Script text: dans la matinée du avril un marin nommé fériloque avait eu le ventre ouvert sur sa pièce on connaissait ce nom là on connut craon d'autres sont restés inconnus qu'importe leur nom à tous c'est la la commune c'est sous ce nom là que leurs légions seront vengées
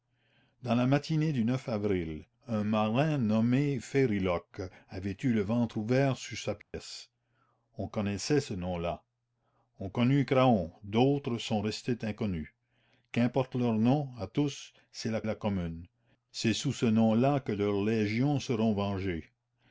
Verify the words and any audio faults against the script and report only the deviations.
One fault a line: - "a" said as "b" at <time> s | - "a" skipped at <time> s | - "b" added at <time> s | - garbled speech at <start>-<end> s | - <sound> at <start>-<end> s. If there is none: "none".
- dropout at 6.6-6.7 s